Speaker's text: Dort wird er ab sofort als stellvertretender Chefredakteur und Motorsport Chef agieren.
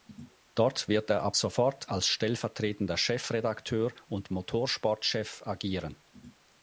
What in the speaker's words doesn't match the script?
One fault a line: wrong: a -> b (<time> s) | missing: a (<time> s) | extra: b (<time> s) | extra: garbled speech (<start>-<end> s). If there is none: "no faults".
no faults